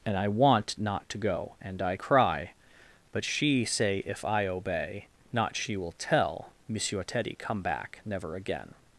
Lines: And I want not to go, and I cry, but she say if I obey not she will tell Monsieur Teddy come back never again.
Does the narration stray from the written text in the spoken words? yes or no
no